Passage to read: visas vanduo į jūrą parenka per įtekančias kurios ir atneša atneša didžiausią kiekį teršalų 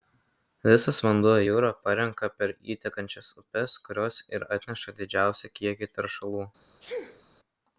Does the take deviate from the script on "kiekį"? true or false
false